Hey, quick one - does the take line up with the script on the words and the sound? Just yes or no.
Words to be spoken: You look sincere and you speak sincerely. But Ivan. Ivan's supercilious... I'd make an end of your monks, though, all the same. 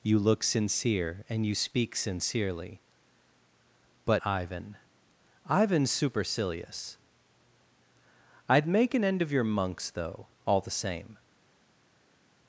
yes